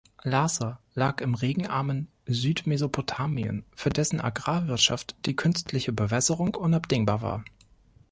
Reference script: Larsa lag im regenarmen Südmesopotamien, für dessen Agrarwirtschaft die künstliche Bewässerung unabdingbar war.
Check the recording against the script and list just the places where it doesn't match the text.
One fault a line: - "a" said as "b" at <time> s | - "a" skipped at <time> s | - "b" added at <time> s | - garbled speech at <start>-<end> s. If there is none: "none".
none